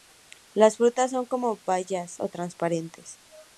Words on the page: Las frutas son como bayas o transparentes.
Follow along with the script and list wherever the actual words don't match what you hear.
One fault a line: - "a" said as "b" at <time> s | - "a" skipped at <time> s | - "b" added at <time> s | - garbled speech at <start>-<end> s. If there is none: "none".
none